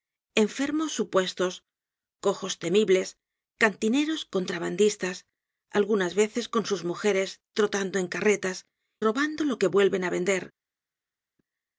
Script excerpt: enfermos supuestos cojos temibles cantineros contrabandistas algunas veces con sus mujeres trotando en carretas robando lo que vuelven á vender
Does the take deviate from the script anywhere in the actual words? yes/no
no